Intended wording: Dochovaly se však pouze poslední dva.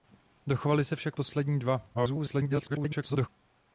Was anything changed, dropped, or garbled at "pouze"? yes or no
yes